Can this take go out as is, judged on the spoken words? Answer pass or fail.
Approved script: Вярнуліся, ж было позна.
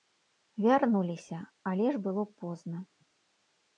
fail